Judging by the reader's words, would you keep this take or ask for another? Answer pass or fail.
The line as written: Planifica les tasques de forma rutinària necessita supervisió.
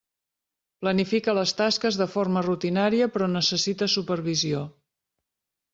fail